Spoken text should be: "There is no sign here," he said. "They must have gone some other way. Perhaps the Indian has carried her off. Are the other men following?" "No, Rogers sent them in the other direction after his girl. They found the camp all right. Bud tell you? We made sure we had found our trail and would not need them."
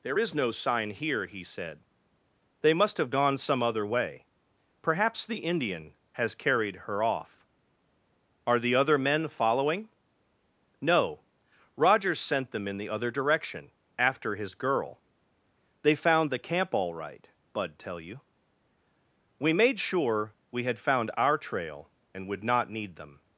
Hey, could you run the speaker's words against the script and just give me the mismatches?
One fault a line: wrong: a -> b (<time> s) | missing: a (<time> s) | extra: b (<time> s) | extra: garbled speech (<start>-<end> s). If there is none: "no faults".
no faults